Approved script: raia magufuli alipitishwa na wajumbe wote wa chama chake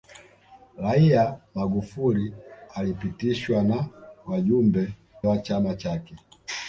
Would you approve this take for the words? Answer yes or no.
no